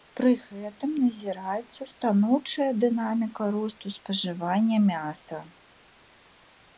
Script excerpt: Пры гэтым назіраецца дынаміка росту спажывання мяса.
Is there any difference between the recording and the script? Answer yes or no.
yes